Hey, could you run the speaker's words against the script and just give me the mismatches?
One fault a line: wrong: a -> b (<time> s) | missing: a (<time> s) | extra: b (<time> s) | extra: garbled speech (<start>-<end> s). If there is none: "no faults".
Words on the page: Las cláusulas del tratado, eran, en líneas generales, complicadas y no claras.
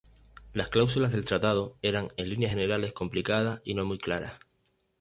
extra: muy (3.8 s)